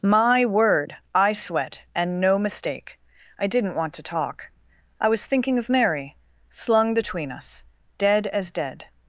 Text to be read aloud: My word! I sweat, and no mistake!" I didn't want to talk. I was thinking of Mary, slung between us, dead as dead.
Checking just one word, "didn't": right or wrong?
right